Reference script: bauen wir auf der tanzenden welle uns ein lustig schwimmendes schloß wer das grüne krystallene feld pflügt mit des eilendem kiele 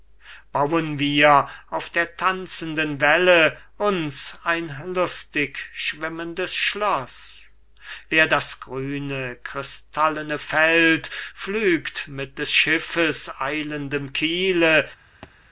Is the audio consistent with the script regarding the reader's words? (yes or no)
no